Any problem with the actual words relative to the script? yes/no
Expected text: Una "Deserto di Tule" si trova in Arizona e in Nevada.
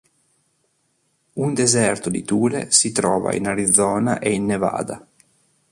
yes